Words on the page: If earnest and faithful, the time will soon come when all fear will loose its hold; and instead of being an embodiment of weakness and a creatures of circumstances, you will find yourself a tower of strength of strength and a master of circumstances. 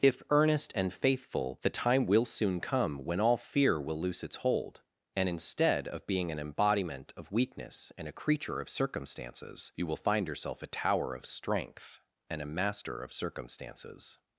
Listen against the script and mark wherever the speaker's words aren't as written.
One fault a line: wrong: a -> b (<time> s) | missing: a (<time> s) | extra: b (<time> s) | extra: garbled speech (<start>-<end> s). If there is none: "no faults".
wrong: creatures -> creature (8.2 s)
missing: of strength (12.0 s)